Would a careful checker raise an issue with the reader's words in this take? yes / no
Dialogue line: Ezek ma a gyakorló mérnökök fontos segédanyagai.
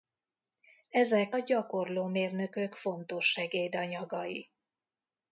yes